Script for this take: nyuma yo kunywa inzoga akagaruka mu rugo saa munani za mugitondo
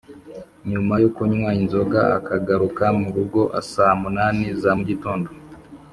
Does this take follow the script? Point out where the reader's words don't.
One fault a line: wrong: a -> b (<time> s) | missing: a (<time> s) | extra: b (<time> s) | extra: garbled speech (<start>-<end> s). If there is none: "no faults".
no faults